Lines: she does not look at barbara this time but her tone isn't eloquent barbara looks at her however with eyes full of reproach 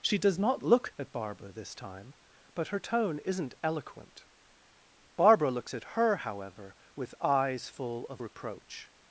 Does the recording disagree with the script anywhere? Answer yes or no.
no